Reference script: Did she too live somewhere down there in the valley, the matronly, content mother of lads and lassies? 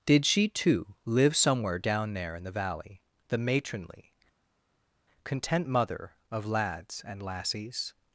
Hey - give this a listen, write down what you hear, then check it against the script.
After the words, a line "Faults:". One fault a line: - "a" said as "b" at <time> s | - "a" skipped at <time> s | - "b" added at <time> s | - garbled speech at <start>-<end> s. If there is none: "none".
Did she too live somewhere down there in the valley, the matronly, content mother of lads and lassies?
Faults:
none